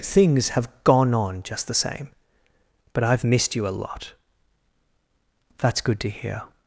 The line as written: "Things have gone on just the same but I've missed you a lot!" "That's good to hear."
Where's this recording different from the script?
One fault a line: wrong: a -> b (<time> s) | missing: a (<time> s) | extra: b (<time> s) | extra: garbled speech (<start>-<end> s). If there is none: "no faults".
no faults